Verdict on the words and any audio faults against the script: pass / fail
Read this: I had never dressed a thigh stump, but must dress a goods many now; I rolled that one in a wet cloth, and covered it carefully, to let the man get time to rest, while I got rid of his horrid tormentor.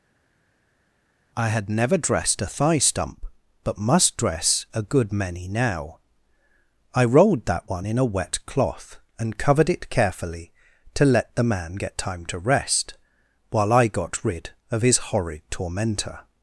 fail